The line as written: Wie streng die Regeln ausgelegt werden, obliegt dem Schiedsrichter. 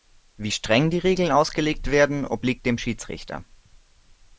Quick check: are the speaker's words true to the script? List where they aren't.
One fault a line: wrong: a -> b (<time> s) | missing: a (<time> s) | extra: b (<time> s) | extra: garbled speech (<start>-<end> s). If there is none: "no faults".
no faults